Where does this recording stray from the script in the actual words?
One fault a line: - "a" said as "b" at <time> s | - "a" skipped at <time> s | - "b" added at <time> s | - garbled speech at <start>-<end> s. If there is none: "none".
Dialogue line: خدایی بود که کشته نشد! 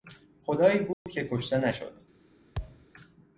none